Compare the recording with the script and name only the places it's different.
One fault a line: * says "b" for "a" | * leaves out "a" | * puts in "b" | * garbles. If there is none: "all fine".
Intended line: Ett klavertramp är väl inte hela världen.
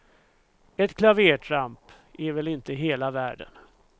all fine